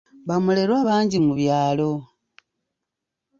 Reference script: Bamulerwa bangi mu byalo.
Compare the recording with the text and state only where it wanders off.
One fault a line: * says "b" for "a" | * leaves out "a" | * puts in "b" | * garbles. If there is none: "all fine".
all fine